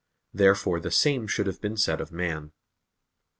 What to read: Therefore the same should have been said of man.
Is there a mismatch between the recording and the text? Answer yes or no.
no